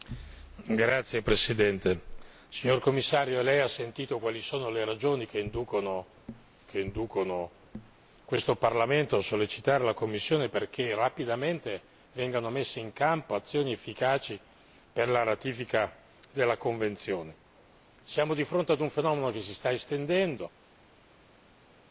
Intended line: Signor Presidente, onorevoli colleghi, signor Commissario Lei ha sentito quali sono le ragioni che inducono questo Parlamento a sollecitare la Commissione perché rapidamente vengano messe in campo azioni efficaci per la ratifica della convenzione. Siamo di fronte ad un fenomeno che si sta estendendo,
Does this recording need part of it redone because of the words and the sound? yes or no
yes